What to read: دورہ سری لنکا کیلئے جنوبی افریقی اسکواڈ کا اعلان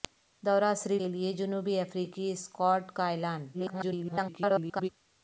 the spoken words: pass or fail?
fail